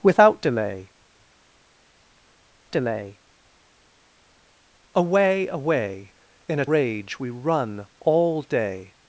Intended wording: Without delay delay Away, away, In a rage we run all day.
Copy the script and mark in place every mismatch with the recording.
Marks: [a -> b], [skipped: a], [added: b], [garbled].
Without delay delay Away, away, In a rage we run all day.